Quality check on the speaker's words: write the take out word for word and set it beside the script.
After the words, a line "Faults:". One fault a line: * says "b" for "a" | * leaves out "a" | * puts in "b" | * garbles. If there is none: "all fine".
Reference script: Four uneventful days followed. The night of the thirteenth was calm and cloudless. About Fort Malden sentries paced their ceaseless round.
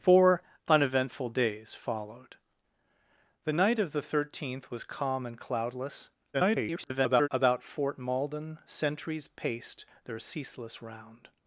Four uneventful days followed. The night of the thirteenth was calm and cloudless. [garbled] About Fort Malden sentries paced their ceaseless round.
Faults:
* garbles